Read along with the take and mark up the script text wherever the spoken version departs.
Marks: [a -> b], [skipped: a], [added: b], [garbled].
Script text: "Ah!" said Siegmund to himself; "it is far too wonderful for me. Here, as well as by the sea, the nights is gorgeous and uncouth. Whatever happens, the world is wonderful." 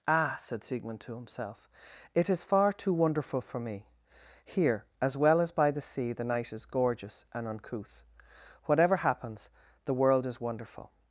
"Ah!" said Siegmund to himself; "it is far too wonderful for me. Here, as well as by the sea, the [nights -> night] is gorgeous and uncouth. Whatever happens, the world is wonderful."